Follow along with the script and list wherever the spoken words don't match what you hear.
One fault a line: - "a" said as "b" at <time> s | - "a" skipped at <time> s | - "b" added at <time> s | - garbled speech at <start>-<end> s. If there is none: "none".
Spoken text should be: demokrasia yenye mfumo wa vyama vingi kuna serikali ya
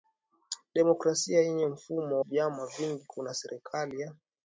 - "wa" skipped at 2.2 s